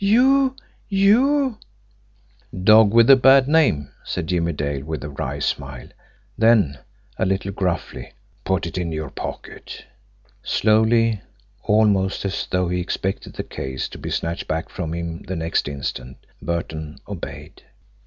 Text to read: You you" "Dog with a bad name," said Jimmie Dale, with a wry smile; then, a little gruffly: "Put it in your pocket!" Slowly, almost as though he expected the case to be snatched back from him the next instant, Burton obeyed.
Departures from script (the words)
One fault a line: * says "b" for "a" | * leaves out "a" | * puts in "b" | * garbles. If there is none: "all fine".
all fine